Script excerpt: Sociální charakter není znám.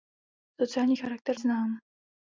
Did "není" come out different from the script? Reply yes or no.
yes